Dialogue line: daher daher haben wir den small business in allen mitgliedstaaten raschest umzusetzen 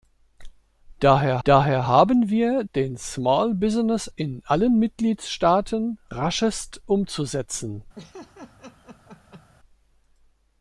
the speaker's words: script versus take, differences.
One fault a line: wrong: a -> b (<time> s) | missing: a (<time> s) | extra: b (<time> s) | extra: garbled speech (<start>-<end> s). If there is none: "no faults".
no faults